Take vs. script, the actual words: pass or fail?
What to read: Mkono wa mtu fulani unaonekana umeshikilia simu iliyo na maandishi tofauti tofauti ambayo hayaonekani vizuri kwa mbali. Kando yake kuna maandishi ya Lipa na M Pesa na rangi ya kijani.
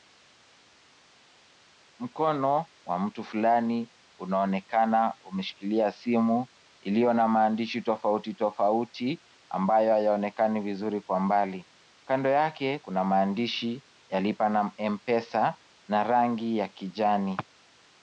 pass